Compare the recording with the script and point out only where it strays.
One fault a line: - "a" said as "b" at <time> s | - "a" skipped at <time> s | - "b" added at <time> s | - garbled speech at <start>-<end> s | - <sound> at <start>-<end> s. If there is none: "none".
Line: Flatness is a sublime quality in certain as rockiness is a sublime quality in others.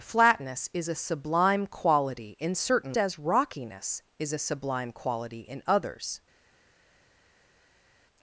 none